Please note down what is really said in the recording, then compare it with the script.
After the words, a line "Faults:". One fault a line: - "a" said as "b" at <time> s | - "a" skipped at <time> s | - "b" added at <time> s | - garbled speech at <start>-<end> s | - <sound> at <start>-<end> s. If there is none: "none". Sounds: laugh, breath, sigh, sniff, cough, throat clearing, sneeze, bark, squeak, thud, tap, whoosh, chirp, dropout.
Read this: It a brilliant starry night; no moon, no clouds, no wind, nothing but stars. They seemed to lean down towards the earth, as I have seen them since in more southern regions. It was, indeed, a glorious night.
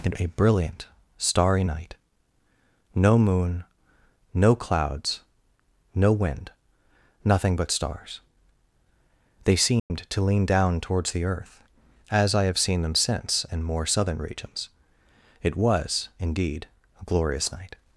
It a brilliant starry night; no moon, no clouds, no wind, nothing but stars. They seemed to lean down towards the earth, as I have seen them since in more southern regions. It was, indeed, a glorious night.
Faults:
- dropout at 9.8-9.9 s